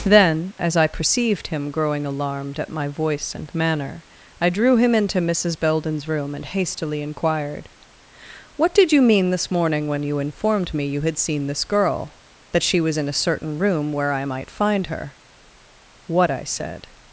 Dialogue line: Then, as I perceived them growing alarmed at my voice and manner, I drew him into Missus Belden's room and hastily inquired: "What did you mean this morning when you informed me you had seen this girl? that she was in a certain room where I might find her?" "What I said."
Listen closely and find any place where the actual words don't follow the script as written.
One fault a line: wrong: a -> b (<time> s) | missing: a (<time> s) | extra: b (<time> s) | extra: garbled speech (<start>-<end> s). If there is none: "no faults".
wrong: them -> him (1.5 s)